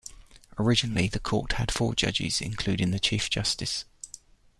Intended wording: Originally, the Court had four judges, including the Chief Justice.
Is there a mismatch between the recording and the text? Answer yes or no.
no